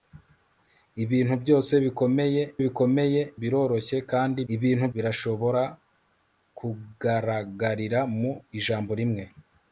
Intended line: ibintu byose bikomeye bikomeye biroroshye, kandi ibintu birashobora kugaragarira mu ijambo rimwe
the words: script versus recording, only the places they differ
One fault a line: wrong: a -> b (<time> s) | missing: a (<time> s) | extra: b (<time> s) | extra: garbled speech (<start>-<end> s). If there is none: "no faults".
no faults